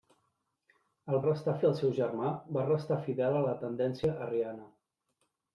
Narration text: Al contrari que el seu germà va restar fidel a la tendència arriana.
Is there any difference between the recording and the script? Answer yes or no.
yes